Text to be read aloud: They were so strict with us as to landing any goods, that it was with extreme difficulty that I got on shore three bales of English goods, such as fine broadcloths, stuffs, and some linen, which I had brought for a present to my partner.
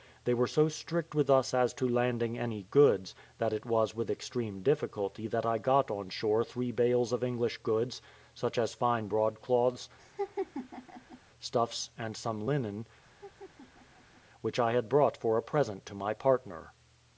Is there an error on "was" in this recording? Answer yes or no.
no